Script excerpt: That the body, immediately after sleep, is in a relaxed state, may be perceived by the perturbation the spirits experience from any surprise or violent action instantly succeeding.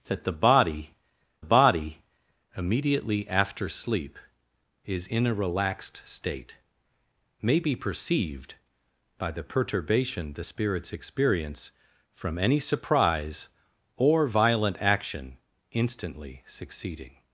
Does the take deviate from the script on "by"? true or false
false